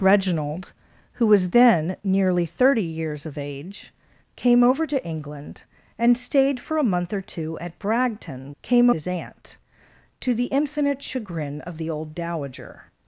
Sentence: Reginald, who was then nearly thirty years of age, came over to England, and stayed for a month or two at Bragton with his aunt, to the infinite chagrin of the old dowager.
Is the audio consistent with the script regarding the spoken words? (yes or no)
no